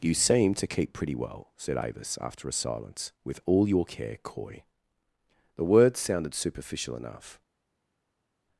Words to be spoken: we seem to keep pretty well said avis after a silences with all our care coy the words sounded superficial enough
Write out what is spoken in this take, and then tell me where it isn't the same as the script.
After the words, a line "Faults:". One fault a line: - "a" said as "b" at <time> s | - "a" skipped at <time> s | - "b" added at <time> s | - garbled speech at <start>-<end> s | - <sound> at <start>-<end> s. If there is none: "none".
you seem to keep pretty well said avis after a silence with all your care coy the words sounded superficial enough
Faults:
- "we" said as "you" at 0.0 s
- "silences" said as "silence" at 2.5 s
- "our" said as "your" at 3.7 s